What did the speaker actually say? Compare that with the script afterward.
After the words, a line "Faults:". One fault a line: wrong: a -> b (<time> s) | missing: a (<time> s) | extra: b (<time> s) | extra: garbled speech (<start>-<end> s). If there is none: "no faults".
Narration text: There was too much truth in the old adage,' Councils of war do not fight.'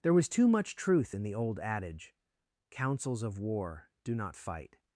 There was too much truth in the old adage,' Councils of war do not fight.'
Faults:
no faults